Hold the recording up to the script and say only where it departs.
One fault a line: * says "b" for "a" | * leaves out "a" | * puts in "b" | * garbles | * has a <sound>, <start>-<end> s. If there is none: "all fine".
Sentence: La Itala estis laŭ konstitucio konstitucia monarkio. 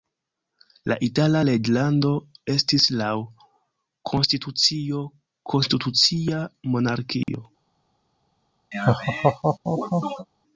* puts in "reĝlando"
* has a dropout, 7.2-7.3 s
* has a laugh, 8.7-10.3 s